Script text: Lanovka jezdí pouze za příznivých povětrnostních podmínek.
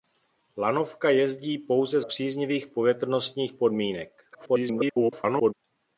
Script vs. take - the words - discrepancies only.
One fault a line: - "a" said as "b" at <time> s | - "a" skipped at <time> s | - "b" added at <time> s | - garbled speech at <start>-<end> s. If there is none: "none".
- "za" skipped at 2.0 s
- garbled speech at 4.3-5.5 s